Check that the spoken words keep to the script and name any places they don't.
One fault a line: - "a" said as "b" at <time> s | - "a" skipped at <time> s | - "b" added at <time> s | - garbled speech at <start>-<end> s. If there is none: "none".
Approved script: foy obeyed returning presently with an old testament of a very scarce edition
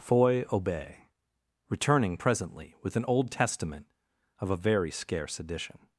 - "obeyed" said as "obey" at 0.5 s